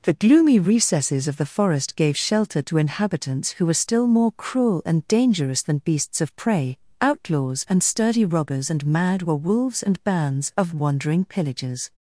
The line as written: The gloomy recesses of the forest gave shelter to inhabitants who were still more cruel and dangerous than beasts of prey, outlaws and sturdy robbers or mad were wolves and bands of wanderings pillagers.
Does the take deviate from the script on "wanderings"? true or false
true